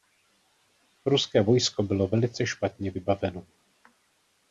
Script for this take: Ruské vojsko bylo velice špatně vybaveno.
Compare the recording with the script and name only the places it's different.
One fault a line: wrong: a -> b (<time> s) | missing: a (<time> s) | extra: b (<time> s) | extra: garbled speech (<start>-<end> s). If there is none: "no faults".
no faults